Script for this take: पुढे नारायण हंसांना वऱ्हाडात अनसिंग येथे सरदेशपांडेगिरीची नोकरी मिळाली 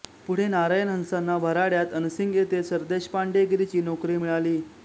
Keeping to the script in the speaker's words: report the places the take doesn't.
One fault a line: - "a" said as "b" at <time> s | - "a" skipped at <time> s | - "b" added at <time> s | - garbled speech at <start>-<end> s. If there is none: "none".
none